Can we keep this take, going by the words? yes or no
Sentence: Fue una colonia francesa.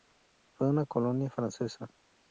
yes